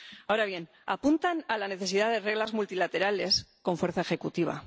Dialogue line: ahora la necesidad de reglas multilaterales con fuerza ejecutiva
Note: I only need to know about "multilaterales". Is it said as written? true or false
true